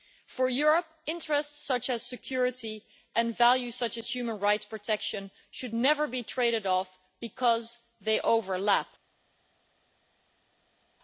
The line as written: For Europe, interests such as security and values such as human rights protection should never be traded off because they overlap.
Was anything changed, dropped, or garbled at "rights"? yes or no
no